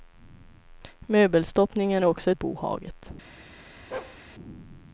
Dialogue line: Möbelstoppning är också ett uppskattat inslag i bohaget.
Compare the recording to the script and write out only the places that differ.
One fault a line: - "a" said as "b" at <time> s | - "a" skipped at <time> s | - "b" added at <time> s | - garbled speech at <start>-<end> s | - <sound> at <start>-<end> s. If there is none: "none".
- "ett uppskattat inslag" skipped at 2.3 s
- bark at 3.9-4.2 s